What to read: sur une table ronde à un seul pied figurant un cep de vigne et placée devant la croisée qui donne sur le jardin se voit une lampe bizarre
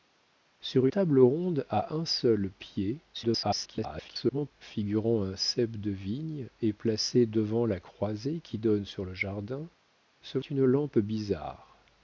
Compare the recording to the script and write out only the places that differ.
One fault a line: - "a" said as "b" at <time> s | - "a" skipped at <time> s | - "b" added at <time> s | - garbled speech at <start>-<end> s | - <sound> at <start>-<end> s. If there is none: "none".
- "une" skipped at 0.9 s
- garbled speech at 3.1-4.5 s
- "voit" skipped at 10.4 s